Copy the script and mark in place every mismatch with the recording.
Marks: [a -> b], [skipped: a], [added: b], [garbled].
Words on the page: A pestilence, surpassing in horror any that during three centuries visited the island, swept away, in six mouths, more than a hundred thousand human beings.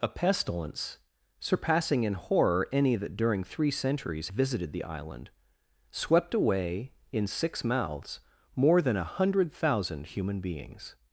A pestilence, surpassing in horror any that during three centuries visited the island, swept away, in six mouths, more than a hundred thousand human beings.